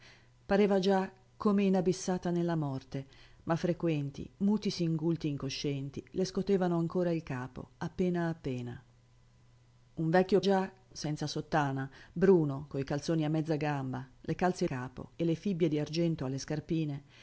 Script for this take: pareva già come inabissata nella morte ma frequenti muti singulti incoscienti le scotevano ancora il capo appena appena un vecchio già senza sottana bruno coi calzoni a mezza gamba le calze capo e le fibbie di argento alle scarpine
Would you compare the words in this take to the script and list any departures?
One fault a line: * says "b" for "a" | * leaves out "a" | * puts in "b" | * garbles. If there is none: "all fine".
all fine